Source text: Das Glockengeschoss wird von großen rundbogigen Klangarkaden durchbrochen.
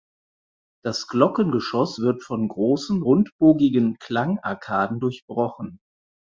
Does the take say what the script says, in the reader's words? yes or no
yes